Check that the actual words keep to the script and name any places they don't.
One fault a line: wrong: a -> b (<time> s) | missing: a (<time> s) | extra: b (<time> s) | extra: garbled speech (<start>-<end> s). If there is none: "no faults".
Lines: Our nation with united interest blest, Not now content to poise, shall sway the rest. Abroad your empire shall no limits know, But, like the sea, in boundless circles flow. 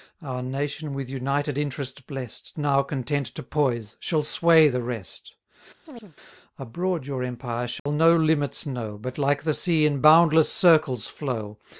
missing: Not (2.6 s)